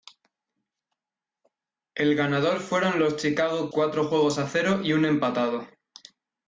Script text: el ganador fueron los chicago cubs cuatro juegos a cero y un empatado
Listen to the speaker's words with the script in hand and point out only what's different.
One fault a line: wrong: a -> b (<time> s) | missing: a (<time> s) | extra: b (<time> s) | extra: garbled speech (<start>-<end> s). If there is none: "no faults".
missing: cubs (3.7 s)